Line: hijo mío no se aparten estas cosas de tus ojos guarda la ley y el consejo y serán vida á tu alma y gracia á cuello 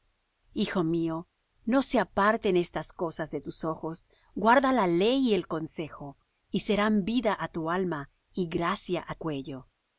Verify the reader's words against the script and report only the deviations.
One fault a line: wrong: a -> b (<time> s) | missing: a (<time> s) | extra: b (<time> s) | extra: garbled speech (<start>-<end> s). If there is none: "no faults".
no faults